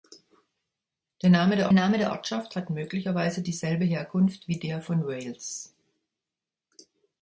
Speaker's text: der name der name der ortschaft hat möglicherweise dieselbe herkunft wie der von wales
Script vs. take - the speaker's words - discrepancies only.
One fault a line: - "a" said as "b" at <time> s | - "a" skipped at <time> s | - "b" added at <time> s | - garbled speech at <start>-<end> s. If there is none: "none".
none